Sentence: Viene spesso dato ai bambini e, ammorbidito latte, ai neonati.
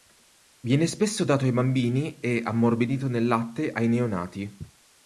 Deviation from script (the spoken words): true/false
true